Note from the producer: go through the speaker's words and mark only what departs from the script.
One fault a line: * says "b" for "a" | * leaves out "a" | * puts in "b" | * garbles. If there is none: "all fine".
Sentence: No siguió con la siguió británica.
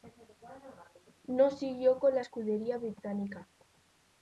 * says "escudería" for "siguió"